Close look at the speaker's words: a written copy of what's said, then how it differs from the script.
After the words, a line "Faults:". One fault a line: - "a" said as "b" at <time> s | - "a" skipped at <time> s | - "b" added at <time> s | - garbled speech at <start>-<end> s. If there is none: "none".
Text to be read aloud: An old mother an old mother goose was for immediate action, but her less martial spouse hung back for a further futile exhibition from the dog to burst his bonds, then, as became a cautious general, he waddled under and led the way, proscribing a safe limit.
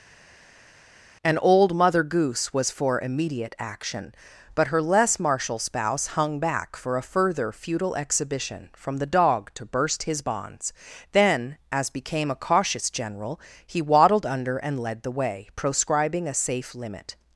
An old mother goose was for immediate action, but her less martial spouse hung back for a further futile exhibition from the dog to burst his bonds, then, as became a cautious general, he waddled under and led the way, proscribing a safe limit.
Faults:
- "an old mother" skipped at 2.0 s